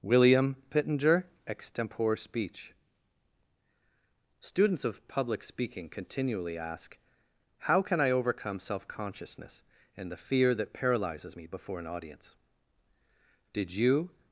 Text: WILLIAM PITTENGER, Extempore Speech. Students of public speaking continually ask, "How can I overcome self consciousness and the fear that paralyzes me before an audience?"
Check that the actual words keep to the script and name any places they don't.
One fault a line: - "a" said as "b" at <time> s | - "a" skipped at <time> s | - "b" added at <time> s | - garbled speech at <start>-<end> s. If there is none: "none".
- "Did you" added at 13.5 s